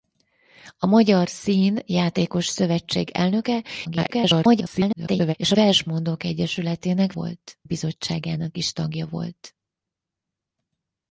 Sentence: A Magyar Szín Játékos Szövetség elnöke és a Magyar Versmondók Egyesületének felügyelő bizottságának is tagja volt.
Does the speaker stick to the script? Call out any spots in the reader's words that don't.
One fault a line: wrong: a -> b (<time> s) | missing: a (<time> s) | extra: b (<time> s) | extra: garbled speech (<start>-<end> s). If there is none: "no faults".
extra: garbled speech (3.8-5.3 s)
missing: Magyar (5.6 s)
wrong: felügyelő -> volt (7.1 s)